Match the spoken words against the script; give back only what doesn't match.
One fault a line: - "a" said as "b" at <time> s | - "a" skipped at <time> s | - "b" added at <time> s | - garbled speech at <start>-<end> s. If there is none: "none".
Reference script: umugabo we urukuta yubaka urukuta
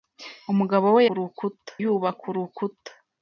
none